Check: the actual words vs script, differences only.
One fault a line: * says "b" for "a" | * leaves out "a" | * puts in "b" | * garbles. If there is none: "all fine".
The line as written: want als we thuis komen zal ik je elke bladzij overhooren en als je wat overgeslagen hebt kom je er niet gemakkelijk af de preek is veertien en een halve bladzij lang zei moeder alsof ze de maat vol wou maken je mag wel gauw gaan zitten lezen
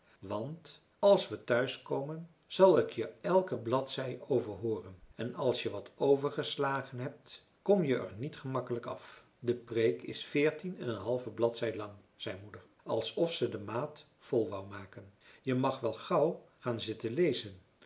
all fine